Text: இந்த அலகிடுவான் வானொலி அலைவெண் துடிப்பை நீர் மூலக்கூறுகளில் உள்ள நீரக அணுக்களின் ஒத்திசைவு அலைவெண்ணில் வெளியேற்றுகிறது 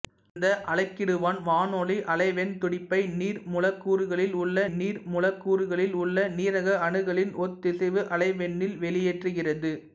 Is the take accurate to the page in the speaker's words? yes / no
no